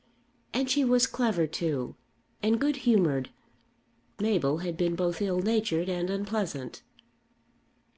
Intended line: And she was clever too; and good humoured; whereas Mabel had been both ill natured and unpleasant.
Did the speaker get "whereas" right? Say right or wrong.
wrong